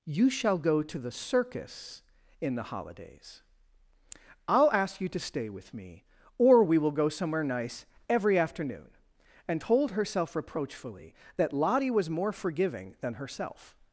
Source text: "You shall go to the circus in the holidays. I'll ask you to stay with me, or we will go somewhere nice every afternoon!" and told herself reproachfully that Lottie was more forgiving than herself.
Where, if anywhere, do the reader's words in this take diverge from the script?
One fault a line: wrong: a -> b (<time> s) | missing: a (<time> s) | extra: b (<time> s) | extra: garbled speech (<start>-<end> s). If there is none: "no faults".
no faults